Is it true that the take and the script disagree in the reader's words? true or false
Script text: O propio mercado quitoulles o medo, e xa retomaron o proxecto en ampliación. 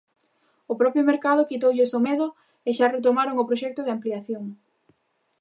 true